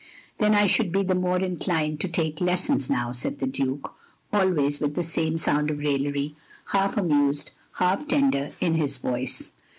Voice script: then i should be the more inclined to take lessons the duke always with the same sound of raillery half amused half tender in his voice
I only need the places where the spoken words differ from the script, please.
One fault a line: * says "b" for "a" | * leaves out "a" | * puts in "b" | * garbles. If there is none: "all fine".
* puts in "now said"